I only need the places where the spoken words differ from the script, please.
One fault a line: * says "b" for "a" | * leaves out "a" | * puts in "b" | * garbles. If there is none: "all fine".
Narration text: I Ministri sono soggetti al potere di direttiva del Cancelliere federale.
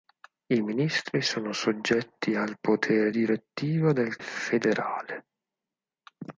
* leaves out "di"
* leaves out "Cancelliere"